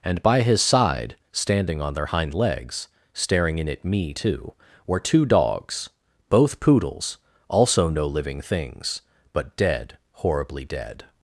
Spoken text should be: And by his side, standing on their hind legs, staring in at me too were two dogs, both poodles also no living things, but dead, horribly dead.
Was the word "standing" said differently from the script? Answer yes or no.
no